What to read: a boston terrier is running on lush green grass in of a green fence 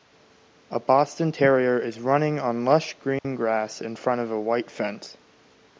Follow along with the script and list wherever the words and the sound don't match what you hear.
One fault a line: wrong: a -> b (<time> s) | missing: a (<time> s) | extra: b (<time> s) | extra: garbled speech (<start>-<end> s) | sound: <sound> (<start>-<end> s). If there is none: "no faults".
sound: dropout (3.2-3.2 s)
extra: front (4.0 s)
wrong: green -> white (4.4 s)